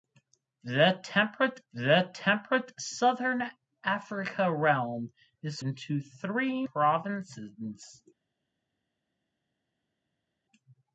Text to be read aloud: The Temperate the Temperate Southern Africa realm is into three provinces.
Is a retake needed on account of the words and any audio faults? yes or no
no